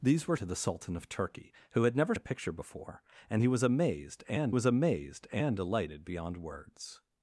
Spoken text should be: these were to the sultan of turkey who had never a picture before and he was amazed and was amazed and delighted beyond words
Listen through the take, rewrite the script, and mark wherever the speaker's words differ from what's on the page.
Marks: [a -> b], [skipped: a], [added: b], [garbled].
these were to the sultan of turkey who had never a picture before and he was amazed and was amazed and delighted beyond words